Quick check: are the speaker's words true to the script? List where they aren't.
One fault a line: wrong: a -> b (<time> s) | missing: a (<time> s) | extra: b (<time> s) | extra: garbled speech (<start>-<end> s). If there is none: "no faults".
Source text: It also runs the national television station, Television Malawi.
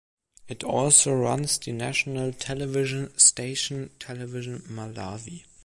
no faults